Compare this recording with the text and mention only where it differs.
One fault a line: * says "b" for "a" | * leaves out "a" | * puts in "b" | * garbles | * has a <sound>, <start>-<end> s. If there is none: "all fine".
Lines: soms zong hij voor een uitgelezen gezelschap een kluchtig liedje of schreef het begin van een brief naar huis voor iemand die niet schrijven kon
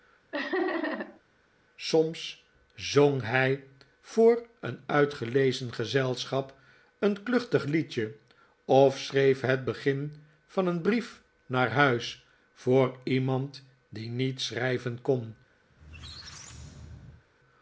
* has a laugh, 0.3-1.2 s
* has a squeak, 15.7-17.2 s